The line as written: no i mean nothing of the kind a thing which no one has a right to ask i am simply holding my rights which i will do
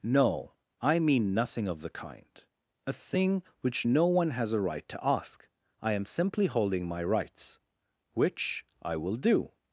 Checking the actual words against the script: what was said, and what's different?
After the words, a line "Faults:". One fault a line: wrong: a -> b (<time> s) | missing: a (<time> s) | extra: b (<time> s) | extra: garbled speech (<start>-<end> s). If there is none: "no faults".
no i mean nothing of the kind a thing which no one has a right to ask i am simply holding my rights which i will do
Faults:
no faults